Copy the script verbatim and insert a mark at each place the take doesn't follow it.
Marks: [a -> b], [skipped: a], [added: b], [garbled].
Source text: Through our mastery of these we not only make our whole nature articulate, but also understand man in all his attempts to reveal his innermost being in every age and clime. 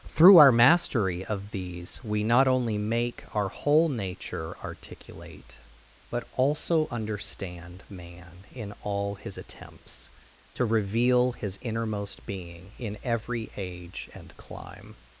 Through our mastery of these we not only make our whole nature articulate, but also understand man in all his attempts to reveal his innermost being in every age and clime.